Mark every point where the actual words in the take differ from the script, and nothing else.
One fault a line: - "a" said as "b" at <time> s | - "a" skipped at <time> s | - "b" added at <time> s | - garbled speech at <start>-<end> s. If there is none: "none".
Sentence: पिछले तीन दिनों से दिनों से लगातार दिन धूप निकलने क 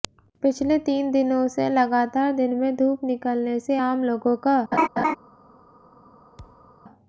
- "दिनों से" skipped at 1.7 s
- "में" added at 2.5 s
- "से आम लोगों" added at 3.6 s